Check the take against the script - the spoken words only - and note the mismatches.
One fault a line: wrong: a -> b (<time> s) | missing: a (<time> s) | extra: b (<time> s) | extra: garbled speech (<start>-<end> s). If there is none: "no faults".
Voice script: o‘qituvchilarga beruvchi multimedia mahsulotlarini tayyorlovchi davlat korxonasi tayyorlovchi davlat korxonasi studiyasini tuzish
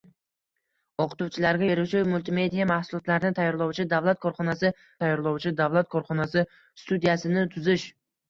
no faults